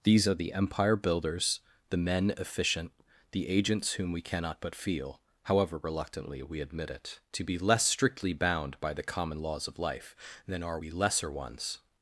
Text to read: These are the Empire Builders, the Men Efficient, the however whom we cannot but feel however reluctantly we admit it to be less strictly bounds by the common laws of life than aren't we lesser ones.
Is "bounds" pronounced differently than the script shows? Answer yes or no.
yes